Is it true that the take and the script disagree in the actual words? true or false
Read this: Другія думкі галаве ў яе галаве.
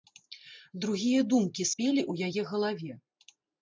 true